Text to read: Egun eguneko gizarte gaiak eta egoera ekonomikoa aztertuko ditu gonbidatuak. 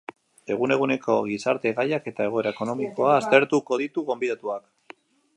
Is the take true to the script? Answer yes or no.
yes